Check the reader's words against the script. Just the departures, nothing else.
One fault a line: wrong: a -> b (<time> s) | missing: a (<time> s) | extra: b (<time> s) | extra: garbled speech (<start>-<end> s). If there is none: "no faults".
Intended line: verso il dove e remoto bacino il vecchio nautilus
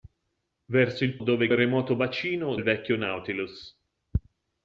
no faults